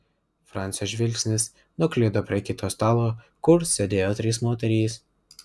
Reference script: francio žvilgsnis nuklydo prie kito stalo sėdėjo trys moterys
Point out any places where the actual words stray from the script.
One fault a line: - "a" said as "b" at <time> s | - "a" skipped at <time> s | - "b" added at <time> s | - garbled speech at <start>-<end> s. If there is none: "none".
- "kur" added at 3.5 s